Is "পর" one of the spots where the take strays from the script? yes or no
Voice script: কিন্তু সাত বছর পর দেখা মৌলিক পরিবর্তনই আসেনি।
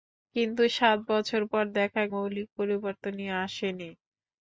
no